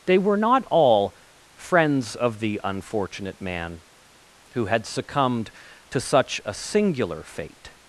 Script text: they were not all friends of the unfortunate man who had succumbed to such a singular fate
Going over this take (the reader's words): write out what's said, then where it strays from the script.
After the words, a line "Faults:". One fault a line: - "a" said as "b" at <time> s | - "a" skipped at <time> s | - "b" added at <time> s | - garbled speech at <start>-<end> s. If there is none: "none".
they were not all friends of the unfortunate man who had succumbed to such a singular fate
Faults:
none